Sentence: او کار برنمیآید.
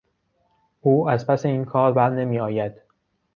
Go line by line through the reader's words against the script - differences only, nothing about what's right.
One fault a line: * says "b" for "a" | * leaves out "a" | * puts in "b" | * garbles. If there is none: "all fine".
* puts in "از پس این"